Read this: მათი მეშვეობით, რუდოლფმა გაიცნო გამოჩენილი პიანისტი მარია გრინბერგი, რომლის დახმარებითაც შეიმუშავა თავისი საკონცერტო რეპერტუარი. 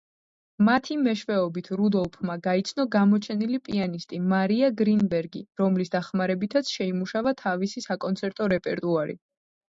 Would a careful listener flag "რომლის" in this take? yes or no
no